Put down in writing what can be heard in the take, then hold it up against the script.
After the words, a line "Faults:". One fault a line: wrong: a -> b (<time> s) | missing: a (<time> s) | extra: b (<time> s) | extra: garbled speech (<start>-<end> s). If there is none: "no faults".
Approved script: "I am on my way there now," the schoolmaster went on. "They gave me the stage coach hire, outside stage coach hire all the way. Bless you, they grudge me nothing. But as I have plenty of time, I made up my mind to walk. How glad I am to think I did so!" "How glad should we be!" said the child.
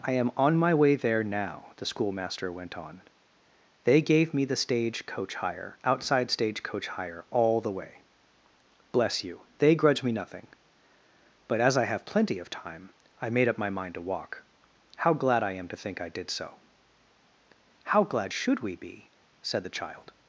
"I am on my way there now," the schoolmaster went on. "They gave me the stage coach hire, outside stage coach hire all the way. Bless you, they grudge me nothing. But as I have plenty of time, I made up my mind to walk. How glad I am to think I did so!" "How glad should we be!" said the child.
Faults:
no faults